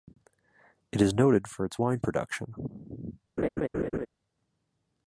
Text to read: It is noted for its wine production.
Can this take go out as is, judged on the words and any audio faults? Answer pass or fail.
fail